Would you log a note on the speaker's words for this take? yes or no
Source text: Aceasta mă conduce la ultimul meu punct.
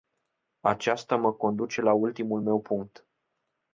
no